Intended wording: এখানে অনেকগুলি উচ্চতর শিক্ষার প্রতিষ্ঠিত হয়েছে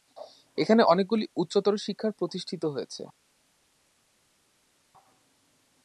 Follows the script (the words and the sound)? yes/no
yes